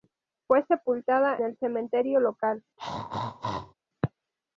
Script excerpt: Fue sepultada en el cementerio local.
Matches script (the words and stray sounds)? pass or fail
fail